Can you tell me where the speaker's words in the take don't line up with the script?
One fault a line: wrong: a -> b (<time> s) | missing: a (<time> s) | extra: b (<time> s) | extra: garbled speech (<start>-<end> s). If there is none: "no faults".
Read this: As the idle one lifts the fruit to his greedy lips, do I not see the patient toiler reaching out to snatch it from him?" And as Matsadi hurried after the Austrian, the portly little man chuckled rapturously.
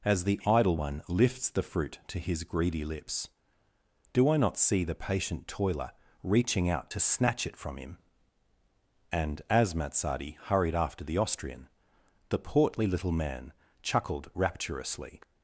no faults